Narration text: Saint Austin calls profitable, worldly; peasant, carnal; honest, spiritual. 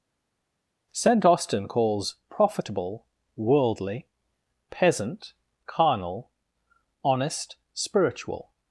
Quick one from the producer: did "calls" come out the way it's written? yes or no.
yes